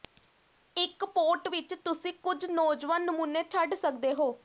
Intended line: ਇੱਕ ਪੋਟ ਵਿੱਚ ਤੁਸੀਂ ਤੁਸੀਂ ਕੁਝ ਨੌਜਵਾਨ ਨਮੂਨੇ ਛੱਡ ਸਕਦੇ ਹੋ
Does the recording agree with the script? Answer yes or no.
no